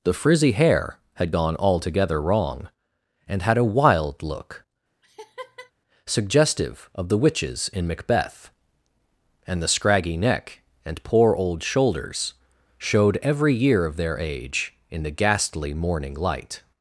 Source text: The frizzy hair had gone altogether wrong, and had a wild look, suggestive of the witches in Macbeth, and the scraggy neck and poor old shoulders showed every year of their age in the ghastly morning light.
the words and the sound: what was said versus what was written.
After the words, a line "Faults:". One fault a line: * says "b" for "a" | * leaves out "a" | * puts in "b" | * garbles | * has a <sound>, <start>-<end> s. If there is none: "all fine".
The frizzy hair had gone altogether wrong, and had a wild look, suggestive of the witches in Macbeth, and the scraggy neck and poor old shoulders showed every year of their age in the ghastly morning light.
Faults:
* has a laugh, 5.0-5.7 s